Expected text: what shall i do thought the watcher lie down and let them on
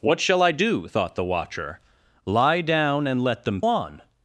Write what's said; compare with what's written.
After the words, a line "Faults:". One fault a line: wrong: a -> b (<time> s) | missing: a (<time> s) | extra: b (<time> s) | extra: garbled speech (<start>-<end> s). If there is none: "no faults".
what shall i do thought the watcher lie down and let them on
Faults:
no faults